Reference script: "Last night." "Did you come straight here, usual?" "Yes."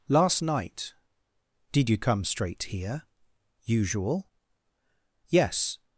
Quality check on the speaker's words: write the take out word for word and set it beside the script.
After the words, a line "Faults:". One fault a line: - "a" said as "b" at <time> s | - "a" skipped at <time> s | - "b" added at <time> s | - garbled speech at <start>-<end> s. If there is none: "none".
"Last night." "Did you come straight here, usual?" "Yes."
Faults:
none